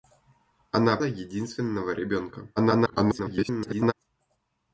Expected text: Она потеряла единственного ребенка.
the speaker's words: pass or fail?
fail